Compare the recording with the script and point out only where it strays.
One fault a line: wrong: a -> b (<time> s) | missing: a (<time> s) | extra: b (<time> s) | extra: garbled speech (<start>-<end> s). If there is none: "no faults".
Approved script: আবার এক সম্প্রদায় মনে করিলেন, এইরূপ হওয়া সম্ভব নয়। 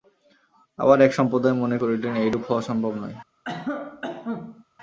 no faults